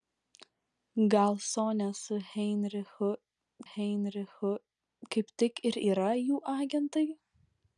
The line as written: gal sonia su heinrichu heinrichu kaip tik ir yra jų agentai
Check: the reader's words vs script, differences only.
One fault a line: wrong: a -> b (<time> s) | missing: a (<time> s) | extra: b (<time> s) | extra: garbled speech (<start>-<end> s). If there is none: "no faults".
no faults